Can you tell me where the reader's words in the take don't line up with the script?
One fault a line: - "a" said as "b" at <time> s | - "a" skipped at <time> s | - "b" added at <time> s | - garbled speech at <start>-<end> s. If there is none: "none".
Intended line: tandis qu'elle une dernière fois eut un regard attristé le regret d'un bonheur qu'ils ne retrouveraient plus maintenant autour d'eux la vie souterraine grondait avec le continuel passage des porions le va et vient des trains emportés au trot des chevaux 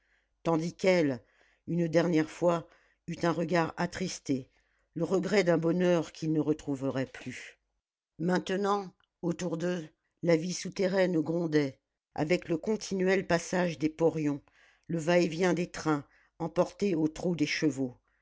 none